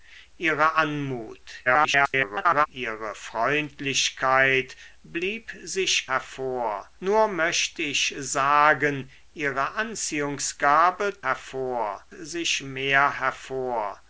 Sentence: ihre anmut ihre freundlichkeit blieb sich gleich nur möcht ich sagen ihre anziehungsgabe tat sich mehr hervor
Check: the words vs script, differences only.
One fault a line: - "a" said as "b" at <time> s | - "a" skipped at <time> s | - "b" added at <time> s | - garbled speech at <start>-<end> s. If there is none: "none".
- garbled speech at 1.7-2.7 s
- "gleich" said as "hervor" at 6.1 s
- "tat" said as "hervor" at 11.2 s